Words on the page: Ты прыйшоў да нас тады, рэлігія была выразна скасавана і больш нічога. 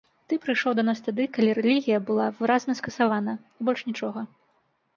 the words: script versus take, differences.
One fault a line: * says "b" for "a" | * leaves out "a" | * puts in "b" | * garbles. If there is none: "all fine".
* puts in "калі"